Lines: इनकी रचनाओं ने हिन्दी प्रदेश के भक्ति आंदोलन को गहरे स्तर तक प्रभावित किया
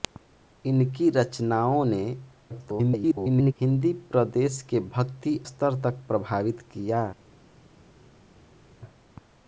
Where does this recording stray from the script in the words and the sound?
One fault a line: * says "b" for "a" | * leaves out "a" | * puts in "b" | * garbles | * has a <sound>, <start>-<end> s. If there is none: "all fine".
* garbles
* leaves out "आंदोलन को गहरे"